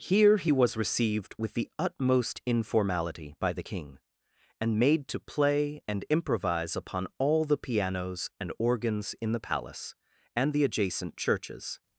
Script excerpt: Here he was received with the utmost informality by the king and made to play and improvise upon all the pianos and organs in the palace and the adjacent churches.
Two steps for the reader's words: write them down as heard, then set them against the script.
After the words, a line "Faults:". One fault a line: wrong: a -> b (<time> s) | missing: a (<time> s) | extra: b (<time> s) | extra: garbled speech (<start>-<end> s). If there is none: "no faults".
Here he was received with the utmost informality by the king and made to play and improvise upon all the pianos and organs in the palace and the adjacent churches.
Faults:
no faults